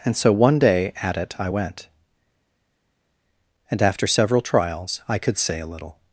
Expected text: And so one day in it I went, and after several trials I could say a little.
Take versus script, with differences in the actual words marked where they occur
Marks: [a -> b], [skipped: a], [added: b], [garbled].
And so one day [in -> at] it I went, and after several trials I could say a little.